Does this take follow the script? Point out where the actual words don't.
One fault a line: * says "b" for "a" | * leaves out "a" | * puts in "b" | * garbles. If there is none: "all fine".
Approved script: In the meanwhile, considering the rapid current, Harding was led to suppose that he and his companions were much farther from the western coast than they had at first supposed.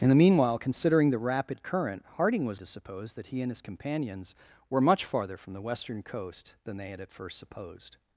* leaves out "led"